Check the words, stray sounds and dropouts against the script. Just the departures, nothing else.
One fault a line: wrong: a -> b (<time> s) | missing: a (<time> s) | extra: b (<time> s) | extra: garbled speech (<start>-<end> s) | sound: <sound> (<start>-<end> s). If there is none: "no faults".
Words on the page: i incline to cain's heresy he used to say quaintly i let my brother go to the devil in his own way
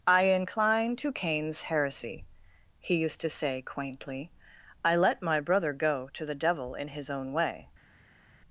no faults